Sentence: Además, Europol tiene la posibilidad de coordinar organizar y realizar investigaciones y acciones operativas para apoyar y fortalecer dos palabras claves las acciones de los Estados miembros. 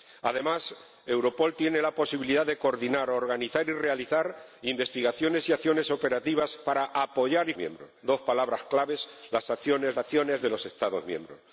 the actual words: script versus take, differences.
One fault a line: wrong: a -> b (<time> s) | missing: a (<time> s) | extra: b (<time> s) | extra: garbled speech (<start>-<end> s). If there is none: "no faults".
wrong: fortalecer -> miembros (7.6 s)
extra: acciones (10.0 s)